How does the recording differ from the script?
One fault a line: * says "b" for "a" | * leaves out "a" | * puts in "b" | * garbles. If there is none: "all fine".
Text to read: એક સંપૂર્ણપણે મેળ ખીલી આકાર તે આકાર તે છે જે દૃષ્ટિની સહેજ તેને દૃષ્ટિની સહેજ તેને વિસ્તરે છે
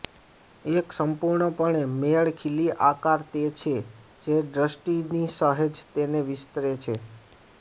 * leaves out "આકાર તે"
* leaves out "દૃષ્ટિની સહેજ તેને"